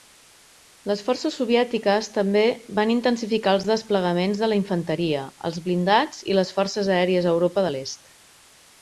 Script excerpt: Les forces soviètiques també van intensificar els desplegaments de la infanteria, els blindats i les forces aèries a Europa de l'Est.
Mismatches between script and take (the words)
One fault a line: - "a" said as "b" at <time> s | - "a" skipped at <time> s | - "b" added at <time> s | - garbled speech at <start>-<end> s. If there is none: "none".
none